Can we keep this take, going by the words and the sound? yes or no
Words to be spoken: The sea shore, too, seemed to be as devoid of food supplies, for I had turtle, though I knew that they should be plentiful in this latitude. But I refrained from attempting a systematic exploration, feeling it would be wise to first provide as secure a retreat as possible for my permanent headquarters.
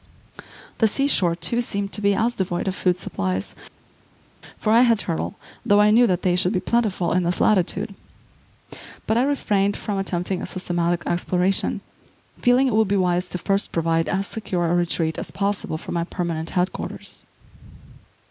yes